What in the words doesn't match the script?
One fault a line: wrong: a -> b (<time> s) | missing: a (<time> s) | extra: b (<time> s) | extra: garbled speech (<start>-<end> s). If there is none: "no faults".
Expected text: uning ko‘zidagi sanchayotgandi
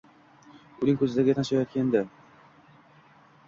no faults